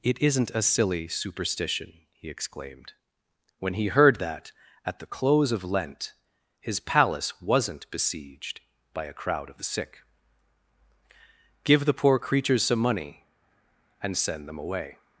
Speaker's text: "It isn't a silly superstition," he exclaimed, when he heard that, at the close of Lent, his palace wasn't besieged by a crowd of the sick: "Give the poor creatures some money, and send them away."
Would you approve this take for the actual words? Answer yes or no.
yes